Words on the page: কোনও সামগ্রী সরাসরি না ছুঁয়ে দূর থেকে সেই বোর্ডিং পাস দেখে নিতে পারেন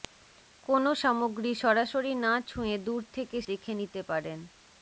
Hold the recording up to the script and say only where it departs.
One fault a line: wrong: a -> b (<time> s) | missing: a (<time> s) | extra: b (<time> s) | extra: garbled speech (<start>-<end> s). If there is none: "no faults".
missing: সেই বোর্ডিং পাস (3.4 s)